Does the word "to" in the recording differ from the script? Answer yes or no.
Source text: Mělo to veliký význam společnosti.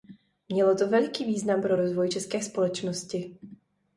no